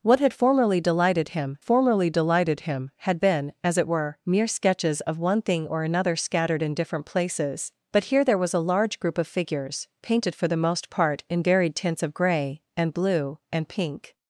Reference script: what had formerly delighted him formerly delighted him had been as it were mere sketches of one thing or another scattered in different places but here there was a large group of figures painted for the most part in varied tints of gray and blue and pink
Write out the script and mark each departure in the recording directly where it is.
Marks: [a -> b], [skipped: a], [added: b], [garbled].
what had formerly delighted him formerly delighted him had been as it were mere sketches of one thing or another scattered in different places but here there was a large group of figures painted for the most part in varied tints of gray and blue and pink